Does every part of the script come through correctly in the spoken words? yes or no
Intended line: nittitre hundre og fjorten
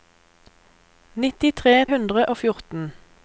yes